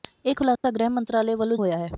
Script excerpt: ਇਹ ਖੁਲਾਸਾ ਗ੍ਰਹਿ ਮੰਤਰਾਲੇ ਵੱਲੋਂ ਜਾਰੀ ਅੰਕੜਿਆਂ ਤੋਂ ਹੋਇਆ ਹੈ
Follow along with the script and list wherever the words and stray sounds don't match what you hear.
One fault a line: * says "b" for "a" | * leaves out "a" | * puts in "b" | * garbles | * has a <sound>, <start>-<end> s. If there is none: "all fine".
* has a dropout, 0.6-0.6 s
* leaves out "ਜਾਰੀ ਅੰਕੜਿਆਂ ਤੋਂ"